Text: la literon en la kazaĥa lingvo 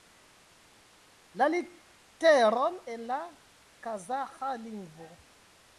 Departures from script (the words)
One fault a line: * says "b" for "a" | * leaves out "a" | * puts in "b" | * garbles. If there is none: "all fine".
all fine